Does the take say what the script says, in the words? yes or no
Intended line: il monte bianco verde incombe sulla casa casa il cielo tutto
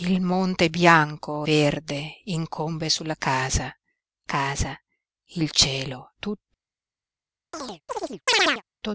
yes